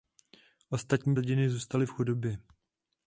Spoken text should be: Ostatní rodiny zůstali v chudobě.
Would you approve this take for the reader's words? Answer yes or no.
yes